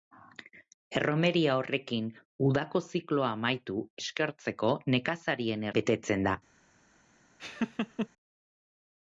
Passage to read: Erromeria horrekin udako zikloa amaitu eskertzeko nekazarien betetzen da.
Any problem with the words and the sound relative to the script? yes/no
yes